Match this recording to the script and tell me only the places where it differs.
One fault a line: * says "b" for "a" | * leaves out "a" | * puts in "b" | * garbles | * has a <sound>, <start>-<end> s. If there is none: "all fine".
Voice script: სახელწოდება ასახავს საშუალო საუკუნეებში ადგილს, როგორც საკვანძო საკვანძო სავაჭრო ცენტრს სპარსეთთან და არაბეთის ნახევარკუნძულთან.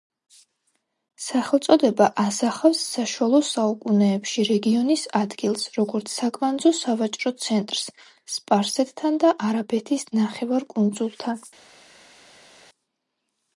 * puts in "რეგიონის"
* leaves out "საკვანძო"